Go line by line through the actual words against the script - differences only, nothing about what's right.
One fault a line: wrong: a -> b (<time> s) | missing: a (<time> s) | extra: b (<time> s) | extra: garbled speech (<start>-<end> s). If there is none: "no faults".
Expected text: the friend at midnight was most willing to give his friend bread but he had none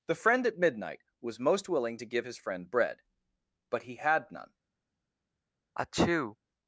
no faults